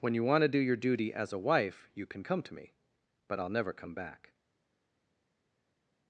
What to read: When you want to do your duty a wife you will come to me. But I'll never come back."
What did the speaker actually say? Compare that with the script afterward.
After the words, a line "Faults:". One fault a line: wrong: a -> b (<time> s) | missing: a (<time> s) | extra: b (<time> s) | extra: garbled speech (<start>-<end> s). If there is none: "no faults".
When you want to do your duty as a wife you can come to me. But I'll never come back."
Faults:
extra: as (1.1 s)
wrong: will -> can (2.1 s)